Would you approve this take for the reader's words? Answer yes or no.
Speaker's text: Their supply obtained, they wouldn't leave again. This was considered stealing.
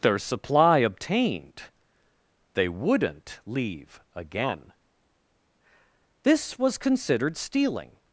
yes